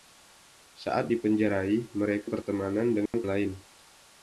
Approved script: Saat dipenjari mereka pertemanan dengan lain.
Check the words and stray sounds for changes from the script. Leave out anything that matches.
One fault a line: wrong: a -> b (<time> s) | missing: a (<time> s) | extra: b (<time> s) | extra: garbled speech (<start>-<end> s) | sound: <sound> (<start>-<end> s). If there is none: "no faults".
sound: dropout (3.1-3.1 s)